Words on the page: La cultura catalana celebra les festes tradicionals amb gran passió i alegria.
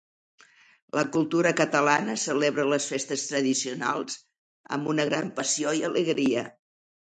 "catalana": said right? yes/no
yes